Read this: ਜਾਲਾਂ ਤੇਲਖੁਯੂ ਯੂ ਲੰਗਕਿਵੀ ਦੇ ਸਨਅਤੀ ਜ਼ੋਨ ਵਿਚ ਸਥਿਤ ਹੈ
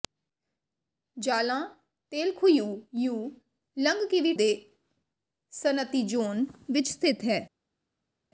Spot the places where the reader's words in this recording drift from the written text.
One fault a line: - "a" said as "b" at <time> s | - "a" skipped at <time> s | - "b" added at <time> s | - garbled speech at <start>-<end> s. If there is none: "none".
none